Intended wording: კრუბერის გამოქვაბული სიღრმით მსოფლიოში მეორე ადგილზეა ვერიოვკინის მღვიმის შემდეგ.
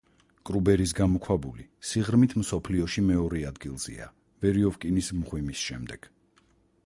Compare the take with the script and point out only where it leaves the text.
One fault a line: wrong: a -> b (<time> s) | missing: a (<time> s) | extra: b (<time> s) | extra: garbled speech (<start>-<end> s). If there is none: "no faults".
no faults